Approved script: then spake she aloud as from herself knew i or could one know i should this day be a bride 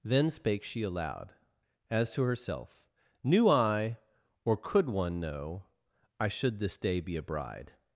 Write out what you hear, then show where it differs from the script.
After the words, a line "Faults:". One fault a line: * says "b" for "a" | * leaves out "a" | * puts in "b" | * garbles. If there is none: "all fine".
then spake she aloud as to herself knew i or could one know i should this day be a bride
Faults:
* says "to" for "from"